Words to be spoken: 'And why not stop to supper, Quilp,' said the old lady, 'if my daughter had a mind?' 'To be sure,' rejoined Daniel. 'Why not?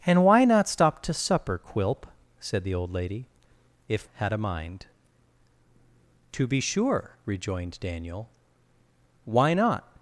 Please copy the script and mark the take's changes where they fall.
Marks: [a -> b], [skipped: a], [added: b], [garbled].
'And why not stop to supper, Quilp,' said the old lady, 'if [skipped: my daughter] had a mind?' 'To be sure,' rejoined Daniel. 'Why not?